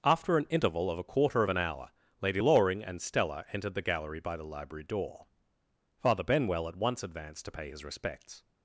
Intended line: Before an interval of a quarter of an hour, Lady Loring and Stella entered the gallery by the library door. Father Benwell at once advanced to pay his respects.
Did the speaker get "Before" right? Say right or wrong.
wrong